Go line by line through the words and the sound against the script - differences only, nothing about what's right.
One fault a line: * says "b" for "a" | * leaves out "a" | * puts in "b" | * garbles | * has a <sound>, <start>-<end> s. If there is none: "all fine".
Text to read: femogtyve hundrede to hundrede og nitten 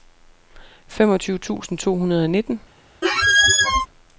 * says "tusind" for "hundrede"
* has a squeak, 3.0-3.9 s